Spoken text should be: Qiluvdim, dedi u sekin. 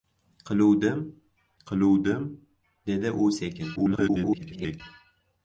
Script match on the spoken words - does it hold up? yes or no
no